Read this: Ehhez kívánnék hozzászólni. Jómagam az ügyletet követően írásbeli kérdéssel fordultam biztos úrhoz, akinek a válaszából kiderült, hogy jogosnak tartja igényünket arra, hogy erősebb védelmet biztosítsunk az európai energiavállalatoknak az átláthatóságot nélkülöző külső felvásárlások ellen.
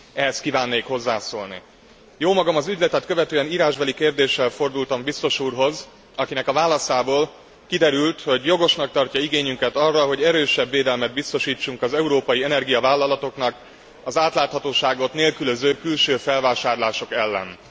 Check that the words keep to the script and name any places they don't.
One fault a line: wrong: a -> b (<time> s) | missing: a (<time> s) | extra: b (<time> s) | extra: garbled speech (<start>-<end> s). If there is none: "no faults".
no faults